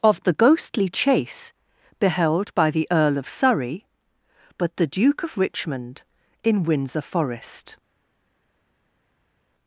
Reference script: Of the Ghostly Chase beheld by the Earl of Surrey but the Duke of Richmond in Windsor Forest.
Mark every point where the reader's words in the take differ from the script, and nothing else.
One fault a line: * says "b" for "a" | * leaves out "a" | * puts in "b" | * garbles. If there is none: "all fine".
all fine